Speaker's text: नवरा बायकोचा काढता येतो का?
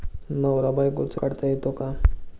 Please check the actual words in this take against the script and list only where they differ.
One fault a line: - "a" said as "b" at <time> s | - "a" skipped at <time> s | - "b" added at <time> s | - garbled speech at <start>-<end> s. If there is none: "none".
none